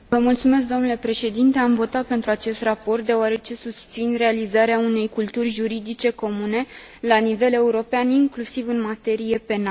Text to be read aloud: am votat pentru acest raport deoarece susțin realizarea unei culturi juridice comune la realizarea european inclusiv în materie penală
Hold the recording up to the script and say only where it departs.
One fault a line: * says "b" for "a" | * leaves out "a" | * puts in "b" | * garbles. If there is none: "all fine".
* says "nivel" for "realizarea"